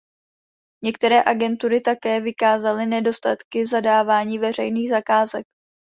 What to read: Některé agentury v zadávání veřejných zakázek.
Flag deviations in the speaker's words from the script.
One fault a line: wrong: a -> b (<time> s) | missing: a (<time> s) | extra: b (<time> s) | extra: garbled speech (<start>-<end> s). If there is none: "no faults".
extra: také vykázaly nedostatky (1.8 s)